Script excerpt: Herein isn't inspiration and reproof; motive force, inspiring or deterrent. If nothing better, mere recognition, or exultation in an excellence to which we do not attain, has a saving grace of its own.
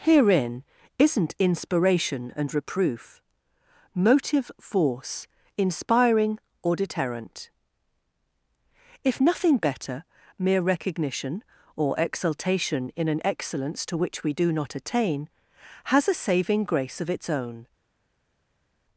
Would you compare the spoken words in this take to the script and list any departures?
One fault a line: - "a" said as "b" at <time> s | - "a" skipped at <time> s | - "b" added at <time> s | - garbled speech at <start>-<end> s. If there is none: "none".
none